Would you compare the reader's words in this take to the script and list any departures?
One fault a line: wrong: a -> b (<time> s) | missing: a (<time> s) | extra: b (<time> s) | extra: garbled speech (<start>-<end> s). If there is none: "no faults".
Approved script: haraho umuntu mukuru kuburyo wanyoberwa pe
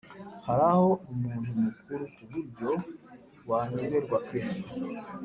no faults